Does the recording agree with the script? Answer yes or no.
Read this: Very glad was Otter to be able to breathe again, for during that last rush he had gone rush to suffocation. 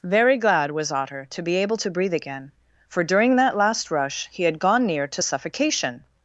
no